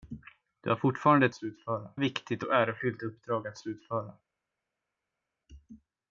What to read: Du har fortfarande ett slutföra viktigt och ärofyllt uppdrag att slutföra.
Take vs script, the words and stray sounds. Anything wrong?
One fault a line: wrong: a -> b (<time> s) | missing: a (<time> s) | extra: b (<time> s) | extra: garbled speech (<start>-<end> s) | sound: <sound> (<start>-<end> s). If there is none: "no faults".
no faults